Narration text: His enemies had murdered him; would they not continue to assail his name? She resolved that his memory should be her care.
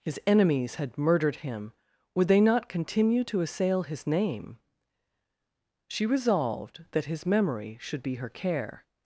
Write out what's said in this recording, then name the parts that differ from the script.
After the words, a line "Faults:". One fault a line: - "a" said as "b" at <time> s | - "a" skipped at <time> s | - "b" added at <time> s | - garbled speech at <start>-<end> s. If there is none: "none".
His enemies had murdered him; would they not continue to assail his name? She resolved that his memory should be her care.
Faults:
none